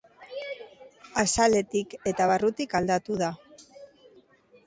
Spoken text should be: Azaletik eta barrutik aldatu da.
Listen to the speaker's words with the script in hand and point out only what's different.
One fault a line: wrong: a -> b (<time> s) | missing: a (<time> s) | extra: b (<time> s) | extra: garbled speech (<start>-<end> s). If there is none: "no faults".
no faults